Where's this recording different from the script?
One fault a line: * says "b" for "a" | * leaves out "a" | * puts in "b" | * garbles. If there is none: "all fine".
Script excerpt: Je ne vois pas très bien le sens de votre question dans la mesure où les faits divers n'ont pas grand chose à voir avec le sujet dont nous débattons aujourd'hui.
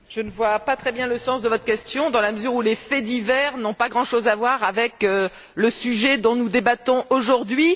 all fine